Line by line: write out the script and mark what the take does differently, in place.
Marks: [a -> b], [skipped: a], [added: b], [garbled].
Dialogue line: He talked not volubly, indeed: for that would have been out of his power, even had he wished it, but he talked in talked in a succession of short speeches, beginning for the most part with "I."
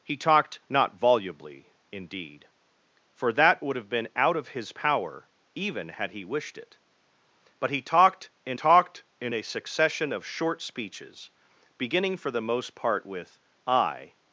He talked not volubly, indeed: for that would have been out of his power, even had he wished it, but he talked in talked in a succession of short speeches, beginning for the most part with "I."